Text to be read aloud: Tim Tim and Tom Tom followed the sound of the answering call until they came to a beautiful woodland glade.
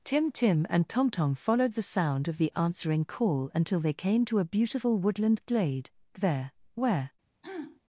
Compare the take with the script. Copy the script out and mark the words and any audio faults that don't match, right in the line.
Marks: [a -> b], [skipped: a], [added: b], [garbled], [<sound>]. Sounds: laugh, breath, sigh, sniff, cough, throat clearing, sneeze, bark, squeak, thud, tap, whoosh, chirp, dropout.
Tim Tim and Tom Tom followed the sound of the answering call until they came to a beautiful woodland glade. [added: There where] [throat clearing]